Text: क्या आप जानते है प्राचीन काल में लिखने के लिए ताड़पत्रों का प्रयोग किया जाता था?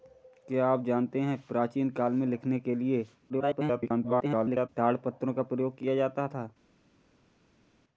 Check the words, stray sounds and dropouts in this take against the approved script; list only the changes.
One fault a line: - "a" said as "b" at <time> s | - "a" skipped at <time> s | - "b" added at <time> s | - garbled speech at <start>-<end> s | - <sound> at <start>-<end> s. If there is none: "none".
- garbled speech at 3.3-4.7 s